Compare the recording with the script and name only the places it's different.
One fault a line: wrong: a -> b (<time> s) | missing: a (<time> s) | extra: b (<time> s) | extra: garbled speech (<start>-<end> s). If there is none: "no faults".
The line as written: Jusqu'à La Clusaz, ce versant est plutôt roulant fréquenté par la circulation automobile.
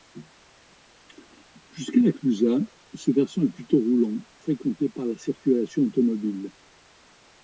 no faults